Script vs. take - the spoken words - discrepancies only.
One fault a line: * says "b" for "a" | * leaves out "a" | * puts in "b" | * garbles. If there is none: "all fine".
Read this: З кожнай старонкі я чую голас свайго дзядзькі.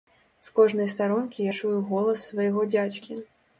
all fine